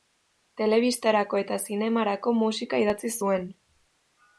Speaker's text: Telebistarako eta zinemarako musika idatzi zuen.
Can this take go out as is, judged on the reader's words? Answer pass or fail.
pass